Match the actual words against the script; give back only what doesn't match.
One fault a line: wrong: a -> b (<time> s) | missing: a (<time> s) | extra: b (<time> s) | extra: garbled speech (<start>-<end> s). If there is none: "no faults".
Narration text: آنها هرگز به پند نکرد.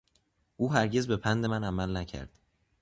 wrong: آنها -> او (0.6 s)
extra: من عمل (1.4 s)